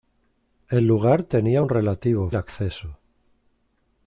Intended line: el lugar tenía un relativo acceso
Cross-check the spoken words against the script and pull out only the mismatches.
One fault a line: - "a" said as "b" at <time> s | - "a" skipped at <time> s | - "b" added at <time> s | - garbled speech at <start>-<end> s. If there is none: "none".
none